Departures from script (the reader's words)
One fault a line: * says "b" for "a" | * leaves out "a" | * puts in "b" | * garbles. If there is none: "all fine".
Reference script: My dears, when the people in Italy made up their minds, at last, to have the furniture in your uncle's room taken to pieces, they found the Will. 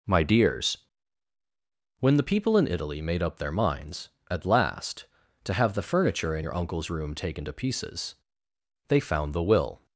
all fine